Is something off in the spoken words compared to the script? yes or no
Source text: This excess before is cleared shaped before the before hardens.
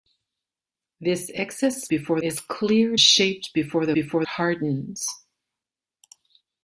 no